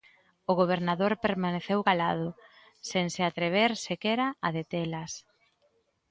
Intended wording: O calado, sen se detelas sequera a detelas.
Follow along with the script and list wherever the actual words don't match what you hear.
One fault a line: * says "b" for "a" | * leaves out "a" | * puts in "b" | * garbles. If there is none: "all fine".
* puts in "gobernador permaneceu"
* says "atrever" for "detelas"